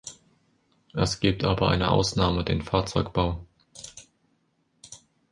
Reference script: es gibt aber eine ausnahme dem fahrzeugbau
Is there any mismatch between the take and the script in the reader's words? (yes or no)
yes